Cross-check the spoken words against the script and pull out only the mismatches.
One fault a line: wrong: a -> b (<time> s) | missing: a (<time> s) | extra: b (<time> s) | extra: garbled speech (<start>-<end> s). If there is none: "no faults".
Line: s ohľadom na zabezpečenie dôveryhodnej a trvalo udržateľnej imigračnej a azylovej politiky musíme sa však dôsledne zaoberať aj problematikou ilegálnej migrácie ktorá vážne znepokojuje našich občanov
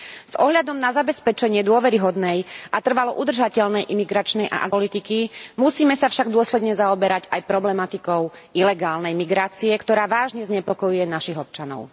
missing: azylovej (4.7 s)